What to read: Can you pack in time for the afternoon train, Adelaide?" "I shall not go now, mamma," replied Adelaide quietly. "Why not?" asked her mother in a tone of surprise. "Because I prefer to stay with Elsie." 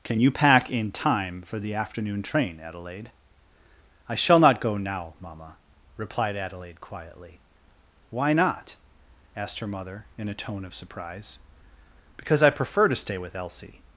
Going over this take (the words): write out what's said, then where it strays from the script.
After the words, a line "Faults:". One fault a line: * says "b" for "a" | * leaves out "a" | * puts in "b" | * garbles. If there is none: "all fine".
Can you pack in time for the afternoon train, Adelaide?" "I shall not go now, mamma," replied Adelaide quietly. "Why not?" asked her mother in a tone of surprise. "Because I prefer to stay with Elsie."
Faults:
all fine